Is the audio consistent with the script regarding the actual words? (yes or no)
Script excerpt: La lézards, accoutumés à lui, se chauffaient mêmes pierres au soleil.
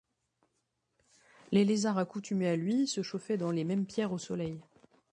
no